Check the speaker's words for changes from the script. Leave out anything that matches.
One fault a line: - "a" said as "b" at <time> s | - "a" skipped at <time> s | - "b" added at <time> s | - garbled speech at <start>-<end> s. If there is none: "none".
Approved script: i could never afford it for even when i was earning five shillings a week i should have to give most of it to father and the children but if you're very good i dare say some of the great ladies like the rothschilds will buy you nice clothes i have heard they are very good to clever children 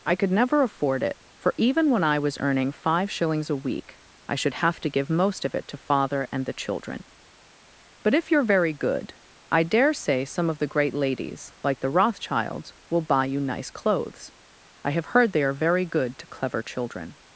none